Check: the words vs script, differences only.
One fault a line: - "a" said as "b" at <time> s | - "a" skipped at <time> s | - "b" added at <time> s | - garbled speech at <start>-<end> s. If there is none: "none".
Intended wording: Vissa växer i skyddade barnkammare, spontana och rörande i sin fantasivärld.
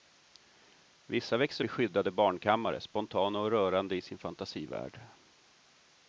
none